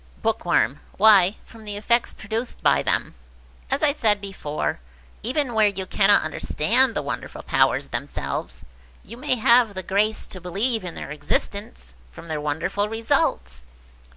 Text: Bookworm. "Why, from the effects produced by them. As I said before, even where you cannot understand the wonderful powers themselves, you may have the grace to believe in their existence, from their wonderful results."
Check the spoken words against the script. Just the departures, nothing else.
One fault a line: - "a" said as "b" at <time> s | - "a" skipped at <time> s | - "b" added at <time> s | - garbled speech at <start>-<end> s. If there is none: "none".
none